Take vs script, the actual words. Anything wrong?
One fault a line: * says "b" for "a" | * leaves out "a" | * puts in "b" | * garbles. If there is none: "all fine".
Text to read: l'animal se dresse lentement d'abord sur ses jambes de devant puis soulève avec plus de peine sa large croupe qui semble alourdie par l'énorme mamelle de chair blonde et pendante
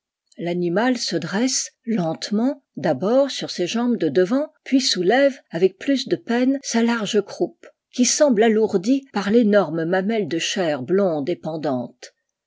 all fine